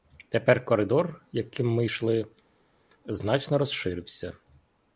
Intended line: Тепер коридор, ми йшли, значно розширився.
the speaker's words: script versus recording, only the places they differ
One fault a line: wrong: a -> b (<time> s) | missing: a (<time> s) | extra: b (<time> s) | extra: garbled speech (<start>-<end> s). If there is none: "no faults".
extra: яким (1.3 s)